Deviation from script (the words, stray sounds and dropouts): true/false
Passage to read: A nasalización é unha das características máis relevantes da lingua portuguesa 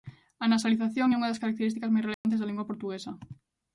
true